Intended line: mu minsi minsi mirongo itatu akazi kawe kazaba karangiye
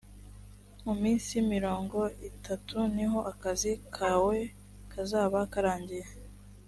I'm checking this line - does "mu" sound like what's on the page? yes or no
yes